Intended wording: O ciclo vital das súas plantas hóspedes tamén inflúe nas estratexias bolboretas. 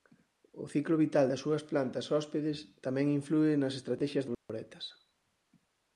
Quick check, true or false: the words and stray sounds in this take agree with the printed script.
false